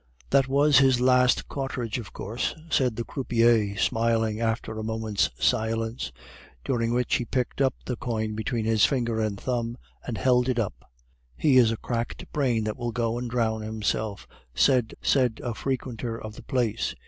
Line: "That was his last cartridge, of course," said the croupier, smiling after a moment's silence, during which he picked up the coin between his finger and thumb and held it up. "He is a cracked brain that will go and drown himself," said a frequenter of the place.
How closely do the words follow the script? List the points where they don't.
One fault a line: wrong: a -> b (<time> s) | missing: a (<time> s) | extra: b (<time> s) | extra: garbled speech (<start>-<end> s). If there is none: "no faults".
extra: said (15.0 s)